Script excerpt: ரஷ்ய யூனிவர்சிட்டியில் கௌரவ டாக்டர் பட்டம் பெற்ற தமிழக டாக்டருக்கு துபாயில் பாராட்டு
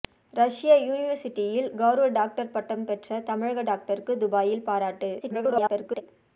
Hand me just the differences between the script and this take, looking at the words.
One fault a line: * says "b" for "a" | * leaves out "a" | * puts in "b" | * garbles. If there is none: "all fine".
* garbles